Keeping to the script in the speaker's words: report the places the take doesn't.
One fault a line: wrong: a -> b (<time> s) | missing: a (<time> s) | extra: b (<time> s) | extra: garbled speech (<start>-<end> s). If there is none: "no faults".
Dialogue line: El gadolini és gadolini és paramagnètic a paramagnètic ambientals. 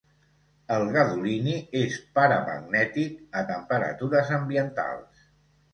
missing: gadolini és (2.0 s)
wrong: paramagnètic -> temperatures (3.5 s)